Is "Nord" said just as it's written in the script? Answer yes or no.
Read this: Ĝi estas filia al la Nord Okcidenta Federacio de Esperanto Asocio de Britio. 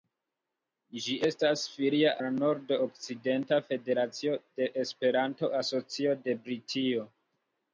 yes